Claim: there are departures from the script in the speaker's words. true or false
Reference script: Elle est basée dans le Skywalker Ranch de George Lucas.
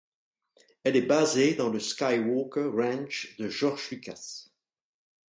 false